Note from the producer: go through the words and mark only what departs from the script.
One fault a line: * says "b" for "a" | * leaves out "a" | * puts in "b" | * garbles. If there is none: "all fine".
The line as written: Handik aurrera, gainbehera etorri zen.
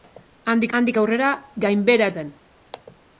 * puts in "handik"
* leaves out "etorri"